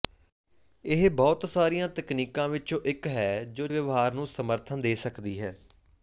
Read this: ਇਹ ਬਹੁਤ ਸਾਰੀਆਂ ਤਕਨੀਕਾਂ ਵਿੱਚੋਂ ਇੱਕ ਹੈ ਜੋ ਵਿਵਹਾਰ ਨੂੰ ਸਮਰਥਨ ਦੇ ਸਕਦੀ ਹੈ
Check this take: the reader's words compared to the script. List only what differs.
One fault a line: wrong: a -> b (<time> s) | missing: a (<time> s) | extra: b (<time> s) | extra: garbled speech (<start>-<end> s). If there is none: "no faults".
no faults